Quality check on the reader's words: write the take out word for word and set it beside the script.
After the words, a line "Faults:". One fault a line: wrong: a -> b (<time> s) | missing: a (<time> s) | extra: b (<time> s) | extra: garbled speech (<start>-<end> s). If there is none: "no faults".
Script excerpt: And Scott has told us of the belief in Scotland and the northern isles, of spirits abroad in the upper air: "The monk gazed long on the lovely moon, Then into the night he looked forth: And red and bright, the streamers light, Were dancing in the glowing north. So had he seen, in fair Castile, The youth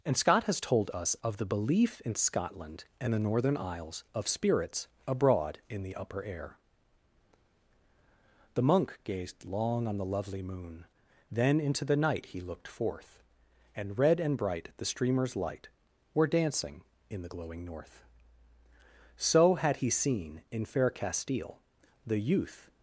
And Scott has told us of the belief in Scotland and the northern isles, of spirits abroad in the upper air: "The monk gazed long on the lovely moon, Then into the night he looked forth: And red and bright, the streamers light, Were dancing in the glowing north. So had he seen, in fair Castile, The youth
Faults:
no faults